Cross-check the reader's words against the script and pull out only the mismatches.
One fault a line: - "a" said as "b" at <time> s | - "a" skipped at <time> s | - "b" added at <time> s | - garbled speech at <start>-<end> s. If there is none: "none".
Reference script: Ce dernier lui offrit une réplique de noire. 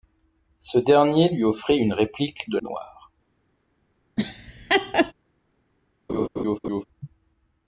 none